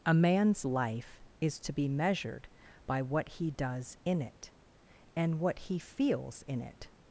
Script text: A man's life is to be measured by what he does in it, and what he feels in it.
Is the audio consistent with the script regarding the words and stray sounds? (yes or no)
yes